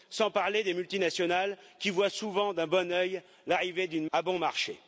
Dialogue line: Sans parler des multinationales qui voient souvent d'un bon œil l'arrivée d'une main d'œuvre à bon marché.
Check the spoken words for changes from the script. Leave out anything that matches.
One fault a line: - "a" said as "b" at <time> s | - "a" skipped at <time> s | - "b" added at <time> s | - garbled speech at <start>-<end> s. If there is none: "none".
- "main d'œuvre" skipped at 4.0 s